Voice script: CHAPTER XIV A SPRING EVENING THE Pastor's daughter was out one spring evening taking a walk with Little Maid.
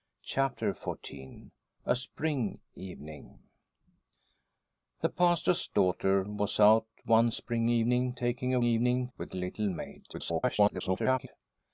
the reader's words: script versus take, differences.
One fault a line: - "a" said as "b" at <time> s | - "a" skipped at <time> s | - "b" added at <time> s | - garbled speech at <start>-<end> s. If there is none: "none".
- "walk" said as "evening" at 8.6 s
- garbled speech at 10.1-11.3 s